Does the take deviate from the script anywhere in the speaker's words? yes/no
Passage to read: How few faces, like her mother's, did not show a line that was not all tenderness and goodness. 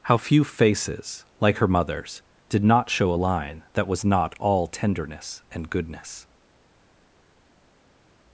no